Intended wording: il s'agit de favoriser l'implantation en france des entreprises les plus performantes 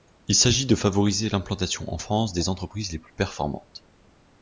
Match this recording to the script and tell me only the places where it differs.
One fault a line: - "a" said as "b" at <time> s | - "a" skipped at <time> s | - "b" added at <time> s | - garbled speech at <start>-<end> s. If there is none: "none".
none